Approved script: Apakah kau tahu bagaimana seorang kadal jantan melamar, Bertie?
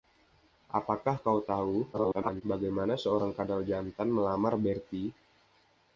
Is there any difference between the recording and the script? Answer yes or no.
yes